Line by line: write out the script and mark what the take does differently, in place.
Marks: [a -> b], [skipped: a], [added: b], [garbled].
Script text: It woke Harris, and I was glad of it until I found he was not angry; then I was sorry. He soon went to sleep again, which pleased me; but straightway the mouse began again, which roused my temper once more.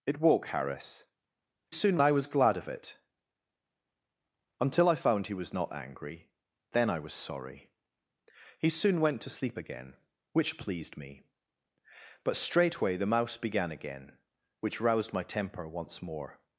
It woke Harris, [and -> soon] I was glad of it until I found he was not angry; then I was sorry. He soon went to sleep again, which pleased me; but straightway the mouse began again, which roused my temper once more.